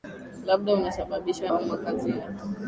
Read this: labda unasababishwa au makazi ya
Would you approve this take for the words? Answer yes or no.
yes